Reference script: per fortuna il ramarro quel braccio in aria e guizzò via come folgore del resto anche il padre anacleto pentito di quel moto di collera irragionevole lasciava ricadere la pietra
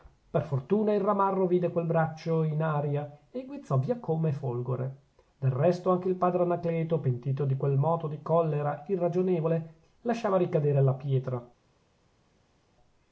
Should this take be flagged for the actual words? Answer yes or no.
yes